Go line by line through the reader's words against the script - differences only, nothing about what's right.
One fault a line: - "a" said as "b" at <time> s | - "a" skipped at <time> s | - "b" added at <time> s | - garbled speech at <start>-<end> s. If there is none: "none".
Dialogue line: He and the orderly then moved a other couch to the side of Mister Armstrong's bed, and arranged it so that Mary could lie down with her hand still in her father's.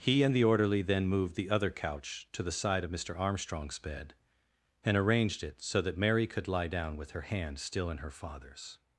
- "a" said as "the" at 1.4 s